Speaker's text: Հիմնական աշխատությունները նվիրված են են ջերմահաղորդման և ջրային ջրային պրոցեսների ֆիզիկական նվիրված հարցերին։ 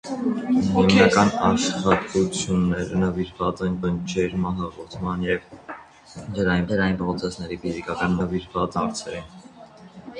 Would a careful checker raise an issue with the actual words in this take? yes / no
no